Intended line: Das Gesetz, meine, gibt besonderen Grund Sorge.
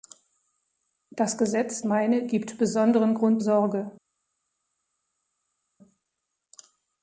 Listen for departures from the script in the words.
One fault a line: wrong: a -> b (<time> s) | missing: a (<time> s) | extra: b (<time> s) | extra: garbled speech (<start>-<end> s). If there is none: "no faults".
no faults